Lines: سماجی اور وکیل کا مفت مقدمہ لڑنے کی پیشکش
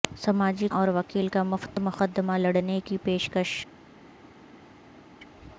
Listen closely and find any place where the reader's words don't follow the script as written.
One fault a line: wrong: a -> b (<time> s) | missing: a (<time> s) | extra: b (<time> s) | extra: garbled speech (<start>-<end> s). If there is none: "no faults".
no faults